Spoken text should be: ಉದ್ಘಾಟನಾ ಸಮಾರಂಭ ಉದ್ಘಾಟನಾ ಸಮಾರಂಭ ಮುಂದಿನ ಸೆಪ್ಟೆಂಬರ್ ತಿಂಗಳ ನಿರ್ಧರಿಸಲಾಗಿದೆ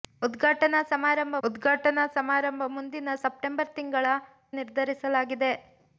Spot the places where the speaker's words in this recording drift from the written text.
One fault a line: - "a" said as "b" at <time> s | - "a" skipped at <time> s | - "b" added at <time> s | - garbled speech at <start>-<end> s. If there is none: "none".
none